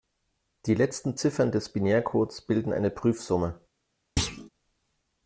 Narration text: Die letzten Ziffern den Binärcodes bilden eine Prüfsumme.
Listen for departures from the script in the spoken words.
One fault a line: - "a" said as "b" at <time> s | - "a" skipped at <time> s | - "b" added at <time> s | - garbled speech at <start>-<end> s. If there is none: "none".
- "den" said as "des" at 1.5 s